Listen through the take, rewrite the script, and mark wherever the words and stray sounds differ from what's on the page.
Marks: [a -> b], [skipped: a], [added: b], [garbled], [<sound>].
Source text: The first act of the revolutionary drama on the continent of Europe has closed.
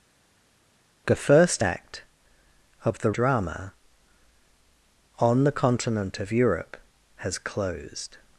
The first act of the [skipped: revolutionary] drama on the continent of Europe has closed.